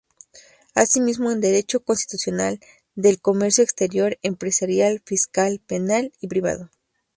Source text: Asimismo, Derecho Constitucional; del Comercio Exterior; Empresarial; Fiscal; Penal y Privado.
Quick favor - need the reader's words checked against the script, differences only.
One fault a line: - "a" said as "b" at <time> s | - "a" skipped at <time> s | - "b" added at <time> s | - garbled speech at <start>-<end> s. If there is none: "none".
- "en" added at 1.3 s